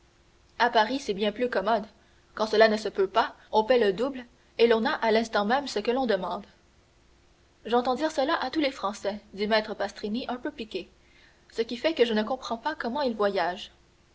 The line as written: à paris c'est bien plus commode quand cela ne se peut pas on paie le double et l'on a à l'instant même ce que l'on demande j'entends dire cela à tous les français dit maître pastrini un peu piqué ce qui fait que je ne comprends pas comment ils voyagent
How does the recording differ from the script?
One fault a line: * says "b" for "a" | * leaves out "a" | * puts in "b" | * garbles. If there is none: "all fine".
all fine